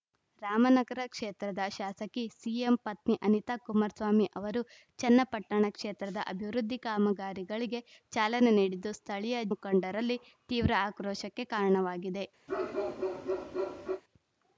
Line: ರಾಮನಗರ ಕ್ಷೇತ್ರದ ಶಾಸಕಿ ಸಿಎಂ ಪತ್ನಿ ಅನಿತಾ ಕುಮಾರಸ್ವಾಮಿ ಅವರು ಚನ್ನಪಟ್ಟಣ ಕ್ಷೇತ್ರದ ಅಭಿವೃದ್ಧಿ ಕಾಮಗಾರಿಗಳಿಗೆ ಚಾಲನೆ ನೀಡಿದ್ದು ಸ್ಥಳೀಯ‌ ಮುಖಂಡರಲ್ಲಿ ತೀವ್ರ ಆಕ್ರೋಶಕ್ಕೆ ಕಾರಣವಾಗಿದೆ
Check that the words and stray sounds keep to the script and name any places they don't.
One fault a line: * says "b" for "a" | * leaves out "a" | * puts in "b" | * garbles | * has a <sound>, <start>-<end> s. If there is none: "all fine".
* has a bark, 12.5-14.0 s